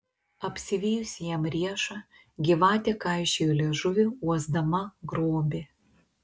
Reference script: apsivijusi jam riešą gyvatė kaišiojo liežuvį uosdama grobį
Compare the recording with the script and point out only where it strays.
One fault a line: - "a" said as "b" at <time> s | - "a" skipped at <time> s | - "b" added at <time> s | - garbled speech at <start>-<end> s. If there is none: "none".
none